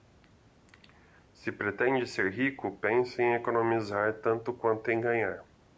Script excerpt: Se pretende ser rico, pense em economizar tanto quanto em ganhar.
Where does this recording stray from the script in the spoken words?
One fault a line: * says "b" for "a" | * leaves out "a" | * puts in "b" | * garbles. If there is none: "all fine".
all fine